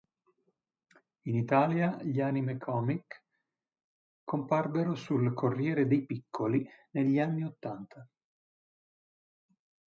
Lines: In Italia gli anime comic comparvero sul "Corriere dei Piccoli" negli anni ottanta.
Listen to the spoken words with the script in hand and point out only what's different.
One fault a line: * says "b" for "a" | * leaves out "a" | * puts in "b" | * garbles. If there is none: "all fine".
all fine